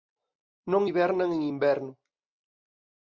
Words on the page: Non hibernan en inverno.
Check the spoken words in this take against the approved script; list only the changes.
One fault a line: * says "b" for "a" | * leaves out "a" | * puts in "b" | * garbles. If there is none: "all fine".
all fine